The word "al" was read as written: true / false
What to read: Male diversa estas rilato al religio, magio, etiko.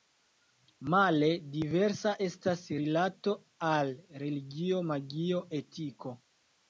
true